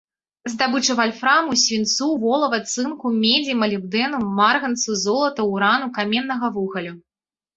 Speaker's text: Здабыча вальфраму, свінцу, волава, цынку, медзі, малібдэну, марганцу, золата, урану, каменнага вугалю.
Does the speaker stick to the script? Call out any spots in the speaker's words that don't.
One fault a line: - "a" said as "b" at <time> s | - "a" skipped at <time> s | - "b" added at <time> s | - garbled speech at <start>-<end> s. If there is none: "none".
none